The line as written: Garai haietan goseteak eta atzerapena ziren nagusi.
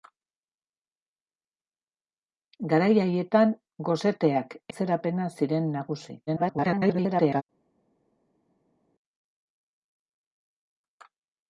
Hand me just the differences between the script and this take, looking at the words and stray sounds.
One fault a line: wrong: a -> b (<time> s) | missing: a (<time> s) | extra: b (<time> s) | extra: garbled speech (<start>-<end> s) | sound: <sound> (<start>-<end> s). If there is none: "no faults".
missing: eta (4.6 s)
extra: garbled speech (6.3-7.4 s)